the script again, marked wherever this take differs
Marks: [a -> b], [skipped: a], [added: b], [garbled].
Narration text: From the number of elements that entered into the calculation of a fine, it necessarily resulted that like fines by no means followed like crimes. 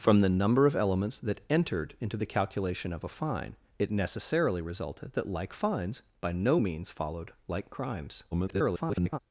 From the number of elements that entered into the calculation of a fine, it necessarily resulted that like fines by no means followed like crimes. [garbled]